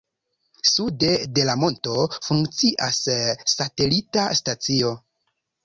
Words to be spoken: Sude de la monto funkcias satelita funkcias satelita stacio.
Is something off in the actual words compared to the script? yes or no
yes